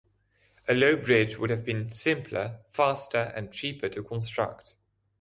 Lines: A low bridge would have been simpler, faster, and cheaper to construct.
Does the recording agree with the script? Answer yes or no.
yes